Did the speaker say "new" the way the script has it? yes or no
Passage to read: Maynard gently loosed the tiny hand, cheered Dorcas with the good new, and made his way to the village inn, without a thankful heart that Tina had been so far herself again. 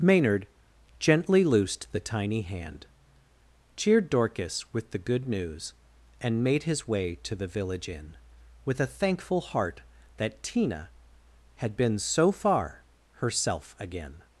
no